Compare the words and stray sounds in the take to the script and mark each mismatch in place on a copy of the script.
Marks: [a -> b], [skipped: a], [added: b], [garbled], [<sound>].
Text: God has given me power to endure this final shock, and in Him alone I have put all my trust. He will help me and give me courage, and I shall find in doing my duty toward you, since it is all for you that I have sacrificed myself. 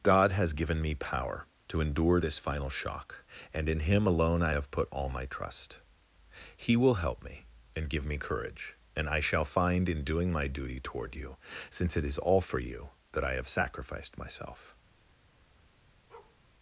God has given me power to endure this final shock, and in Him alone I have put all my trust. He will help me and give me courage, and I shall find in doing my duty toward you, since it is all for you that I have sacrificed myself. [bark]